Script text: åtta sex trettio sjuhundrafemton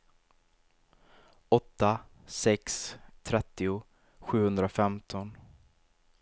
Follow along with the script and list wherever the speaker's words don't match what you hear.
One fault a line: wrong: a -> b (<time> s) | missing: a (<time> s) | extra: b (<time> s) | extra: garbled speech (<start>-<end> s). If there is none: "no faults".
no faults